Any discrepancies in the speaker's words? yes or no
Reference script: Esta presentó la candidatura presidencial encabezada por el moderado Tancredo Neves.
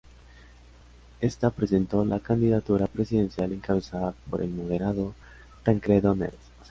no